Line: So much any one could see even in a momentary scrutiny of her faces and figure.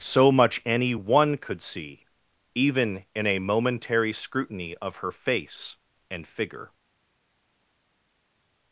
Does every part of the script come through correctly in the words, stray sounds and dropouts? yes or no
no